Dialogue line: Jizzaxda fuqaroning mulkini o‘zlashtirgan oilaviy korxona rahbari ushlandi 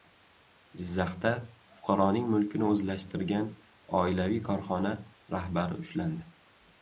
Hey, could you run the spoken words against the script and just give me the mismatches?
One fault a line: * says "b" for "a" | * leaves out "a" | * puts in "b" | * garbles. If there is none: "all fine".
all fine